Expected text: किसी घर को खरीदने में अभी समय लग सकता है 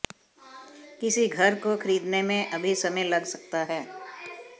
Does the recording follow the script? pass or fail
pass